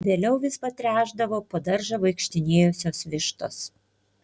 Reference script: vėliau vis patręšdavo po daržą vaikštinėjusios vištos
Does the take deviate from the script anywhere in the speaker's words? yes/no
no